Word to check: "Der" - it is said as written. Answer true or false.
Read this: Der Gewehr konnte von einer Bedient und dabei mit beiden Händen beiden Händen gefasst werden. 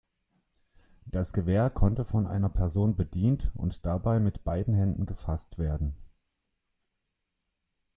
false